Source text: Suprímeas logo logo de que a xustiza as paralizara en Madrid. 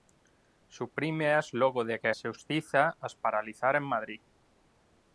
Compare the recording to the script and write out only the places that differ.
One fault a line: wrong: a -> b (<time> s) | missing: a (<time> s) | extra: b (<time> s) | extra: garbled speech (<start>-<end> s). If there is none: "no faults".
missing: logo (1.8 s)